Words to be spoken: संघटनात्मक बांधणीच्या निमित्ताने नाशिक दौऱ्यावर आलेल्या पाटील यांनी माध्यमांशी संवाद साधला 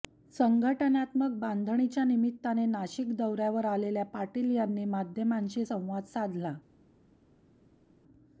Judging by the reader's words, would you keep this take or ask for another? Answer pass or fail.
pass